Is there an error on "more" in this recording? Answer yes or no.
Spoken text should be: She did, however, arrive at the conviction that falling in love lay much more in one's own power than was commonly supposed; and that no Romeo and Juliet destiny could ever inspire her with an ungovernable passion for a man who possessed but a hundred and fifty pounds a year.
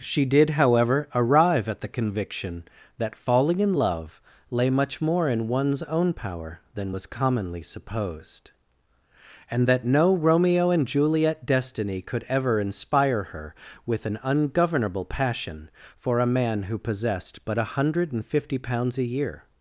no